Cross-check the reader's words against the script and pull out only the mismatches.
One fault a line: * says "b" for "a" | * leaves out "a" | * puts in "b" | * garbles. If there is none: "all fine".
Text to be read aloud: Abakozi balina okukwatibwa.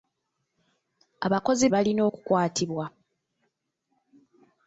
all fine